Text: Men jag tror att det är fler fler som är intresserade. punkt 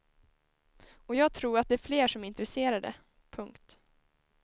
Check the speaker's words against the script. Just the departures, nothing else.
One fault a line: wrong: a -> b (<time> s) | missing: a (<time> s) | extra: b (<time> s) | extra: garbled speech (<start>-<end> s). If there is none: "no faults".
wrong: Men -> Och (0.9 s)
missing: fler (2.1 s)